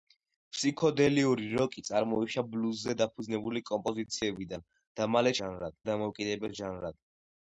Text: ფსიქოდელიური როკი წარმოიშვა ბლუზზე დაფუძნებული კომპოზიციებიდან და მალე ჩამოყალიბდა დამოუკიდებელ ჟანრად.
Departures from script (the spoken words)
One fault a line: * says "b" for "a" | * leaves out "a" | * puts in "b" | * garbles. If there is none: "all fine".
* says "ჟანრად" for "ჩამოყალიბდა"